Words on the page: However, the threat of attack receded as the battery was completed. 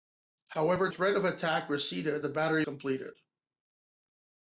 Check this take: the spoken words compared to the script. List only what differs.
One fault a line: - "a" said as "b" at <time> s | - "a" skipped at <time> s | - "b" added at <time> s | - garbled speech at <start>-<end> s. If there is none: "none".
- "the" skipped at 0.9 s
- "as" skipped at 2.2 s
- "was" skipped at 2.7 s